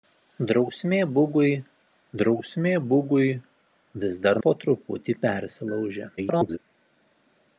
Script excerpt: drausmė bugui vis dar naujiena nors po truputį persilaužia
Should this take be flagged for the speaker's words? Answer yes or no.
yes